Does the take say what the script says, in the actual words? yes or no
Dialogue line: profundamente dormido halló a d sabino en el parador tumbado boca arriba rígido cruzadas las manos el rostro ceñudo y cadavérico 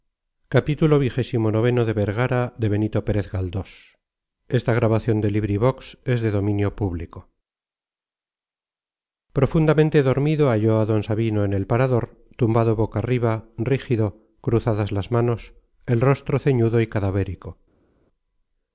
yes